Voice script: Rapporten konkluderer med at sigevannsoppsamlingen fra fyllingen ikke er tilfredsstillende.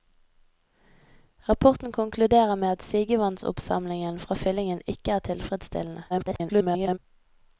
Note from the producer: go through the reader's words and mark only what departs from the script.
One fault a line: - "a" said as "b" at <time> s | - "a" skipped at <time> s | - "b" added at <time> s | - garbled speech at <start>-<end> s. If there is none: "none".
- garbled speech at 6.1-7.0 s